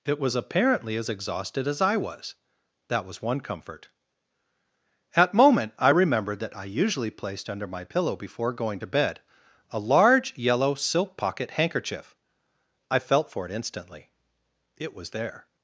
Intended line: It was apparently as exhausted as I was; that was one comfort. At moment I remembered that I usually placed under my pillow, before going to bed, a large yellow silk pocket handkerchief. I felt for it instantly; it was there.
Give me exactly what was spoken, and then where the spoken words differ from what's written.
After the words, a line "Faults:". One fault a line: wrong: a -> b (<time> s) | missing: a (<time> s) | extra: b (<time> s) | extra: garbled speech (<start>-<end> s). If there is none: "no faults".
It was apparently as exhausted as I was; that was one comfort. At moment I remembered that I usually placed under my pillow, before going to bed, a large yellow silk pocket handkerchief. I felt for it instantly; it was there.
Faults:
no faults